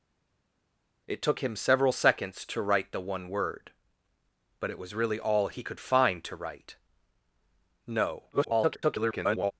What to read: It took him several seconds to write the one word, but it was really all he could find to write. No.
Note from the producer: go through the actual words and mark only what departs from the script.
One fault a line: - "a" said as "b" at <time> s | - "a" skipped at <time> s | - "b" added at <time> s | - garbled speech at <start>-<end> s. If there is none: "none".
- garbled speech at 8.3-9.5 s